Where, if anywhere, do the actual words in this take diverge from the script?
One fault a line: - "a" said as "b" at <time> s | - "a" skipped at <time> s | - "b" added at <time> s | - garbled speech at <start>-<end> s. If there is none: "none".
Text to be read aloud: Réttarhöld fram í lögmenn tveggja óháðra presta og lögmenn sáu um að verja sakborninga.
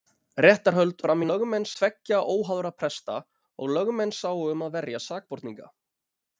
none